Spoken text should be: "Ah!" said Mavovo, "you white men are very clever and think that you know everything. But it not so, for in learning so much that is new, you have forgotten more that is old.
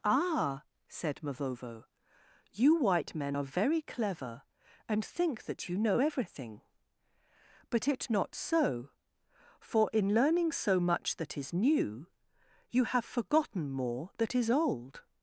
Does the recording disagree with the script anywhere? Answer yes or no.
no